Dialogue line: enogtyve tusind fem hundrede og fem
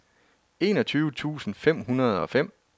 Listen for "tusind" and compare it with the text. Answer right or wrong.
right